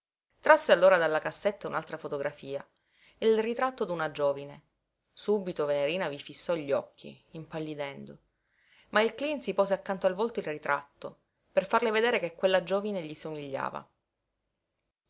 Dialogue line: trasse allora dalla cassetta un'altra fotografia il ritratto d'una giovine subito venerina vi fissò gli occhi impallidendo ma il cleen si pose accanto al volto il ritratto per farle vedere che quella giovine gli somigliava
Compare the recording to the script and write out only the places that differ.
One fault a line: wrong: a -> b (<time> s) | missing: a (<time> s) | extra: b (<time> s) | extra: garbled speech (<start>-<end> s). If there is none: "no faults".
no faults